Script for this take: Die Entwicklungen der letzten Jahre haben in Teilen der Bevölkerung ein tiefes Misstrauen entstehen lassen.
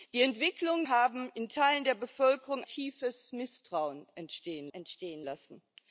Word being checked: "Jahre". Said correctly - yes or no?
no